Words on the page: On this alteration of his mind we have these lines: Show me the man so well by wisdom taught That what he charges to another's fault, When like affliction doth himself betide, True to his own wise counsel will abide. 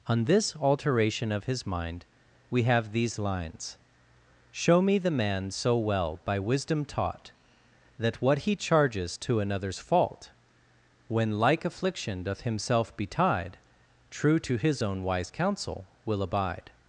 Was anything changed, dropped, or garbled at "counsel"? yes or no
no